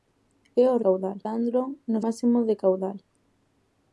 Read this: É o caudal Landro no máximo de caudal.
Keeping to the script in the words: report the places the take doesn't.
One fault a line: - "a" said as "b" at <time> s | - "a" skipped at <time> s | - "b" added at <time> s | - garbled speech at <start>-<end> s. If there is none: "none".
none